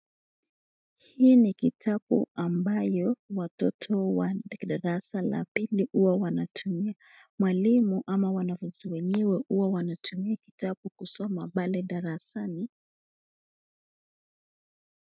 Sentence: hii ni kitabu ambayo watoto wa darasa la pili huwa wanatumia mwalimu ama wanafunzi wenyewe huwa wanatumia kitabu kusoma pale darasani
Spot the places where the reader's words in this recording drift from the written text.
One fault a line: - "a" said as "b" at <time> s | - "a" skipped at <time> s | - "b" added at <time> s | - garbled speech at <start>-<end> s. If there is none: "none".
none